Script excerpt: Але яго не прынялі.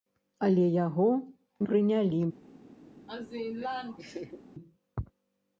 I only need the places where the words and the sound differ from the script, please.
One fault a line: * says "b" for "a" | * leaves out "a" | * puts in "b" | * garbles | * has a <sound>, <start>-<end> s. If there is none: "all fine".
* leaves out "не"
* has a laugh, 3.1-4.4 s